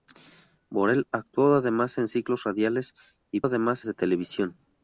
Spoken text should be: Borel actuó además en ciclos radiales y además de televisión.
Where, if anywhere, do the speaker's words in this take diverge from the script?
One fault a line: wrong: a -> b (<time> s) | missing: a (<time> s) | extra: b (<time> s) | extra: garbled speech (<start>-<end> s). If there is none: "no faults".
no faults